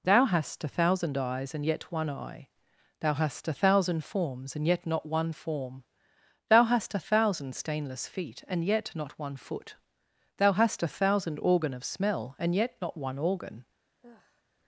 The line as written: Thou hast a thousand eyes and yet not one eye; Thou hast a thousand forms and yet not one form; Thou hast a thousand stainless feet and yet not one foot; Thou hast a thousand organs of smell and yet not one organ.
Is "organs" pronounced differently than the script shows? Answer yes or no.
yes